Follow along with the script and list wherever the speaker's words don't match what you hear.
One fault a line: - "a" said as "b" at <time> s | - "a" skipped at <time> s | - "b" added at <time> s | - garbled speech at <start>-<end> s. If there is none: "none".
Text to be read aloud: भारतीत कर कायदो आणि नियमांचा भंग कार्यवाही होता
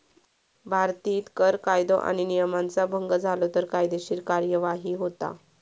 - "झालो तर कायदेशीर" added at 3.1 s